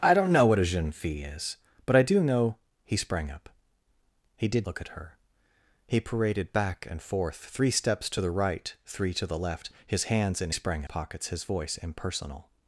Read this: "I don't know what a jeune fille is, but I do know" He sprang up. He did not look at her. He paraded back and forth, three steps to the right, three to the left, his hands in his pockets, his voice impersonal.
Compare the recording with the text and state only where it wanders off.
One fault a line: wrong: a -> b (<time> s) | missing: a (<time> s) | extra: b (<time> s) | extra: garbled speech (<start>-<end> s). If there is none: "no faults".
missing: not (4.7 s)
wrong: his -> sprang (10.5 s)